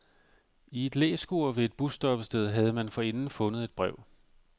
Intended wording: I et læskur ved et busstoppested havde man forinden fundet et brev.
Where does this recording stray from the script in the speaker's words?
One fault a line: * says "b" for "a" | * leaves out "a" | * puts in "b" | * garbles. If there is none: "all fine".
all fine